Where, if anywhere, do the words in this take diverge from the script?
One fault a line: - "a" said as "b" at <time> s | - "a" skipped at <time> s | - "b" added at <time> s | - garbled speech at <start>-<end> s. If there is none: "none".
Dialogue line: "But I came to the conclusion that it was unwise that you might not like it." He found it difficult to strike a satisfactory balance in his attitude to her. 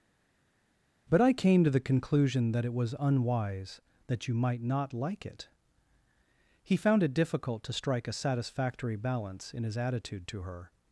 none